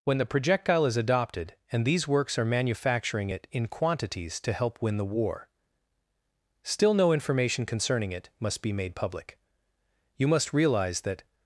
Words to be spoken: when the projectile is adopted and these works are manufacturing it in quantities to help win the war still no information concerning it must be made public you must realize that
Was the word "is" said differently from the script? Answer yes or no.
no